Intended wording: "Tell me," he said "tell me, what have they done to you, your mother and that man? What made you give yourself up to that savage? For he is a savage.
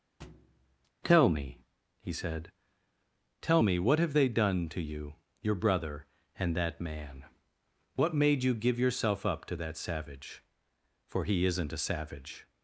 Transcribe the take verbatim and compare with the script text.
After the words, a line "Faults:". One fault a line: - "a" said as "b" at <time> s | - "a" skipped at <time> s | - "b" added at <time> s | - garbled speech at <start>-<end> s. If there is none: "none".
"Tell me," he said "tell me, what have they done to you, your brother and that man? What made you give yourself up to that savage? For he isn't a savage.
Faults:
- "mother" said as "brother" at 5.6 s
- "is" said as "isn't" at 11.5 s